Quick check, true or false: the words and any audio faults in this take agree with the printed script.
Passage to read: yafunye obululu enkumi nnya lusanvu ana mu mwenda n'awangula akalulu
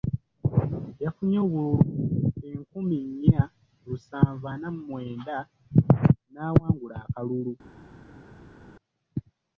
true